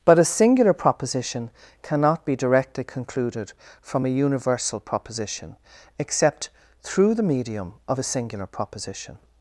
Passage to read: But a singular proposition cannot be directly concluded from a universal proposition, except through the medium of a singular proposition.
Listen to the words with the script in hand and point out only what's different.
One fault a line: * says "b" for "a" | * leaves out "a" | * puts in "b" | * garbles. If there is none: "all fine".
all fine